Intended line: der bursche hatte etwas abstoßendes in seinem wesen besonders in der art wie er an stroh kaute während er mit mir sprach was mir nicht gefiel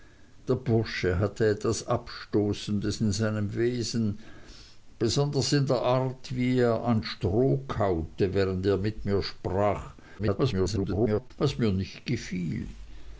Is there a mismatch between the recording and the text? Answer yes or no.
yes